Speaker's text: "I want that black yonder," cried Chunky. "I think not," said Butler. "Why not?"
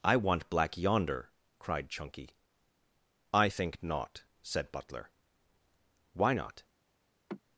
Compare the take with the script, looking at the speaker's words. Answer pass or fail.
fail